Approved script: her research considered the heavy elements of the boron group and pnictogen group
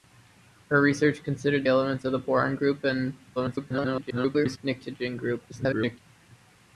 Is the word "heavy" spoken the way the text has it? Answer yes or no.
no